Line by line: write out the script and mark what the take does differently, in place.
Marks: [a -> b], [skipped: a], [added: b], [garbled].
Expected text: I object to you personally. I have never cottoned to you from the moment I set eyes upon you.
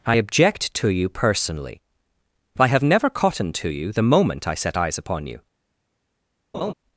I object to you personally. I have never cottoned to you [skipped: from] the moment I set eyes upon you.